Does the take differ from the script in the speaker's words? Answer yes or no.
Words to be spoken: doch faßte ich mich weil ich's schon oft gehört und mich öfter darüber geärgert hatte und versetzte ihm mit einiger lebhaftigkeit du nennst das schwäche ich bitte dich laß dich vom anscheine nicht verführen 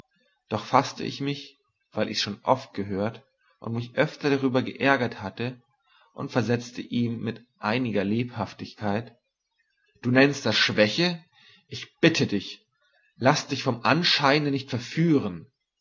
no